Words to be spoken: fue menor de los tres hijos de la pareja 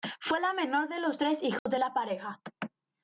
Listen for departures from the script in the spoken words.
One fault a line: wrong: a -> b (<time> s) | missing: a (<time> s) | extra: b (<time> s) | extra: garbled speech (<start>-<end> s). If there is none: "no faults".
extra: la (0.4 s)